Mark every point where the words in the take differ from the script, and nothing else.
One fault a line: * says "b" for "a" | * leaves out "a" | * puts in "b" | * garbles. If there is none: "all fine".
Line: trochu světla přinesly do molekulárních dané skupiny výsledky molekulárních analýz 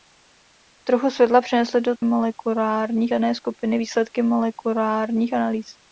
all fine